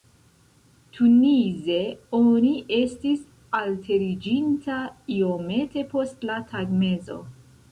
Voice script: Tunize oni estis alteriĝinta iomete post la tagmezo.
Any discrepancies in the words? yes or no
no